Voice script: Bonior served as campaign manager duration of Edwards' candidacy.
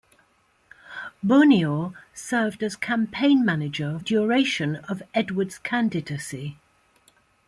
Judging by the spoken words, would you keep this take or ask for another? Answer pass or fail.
pass